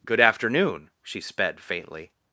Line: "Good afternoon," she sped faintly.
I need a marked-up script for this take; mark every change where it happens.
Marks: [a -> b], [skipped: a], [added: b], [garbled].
"Good afternoon," she sped faintly.